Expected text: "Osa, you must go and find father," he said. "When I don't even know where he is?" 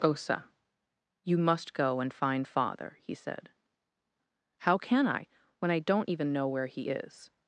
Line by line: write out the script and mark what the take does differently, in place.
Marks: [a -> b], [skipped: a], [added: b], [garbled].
"Osa, you must go and find father," he said. [added: How can I] "When I don't even know where he is?"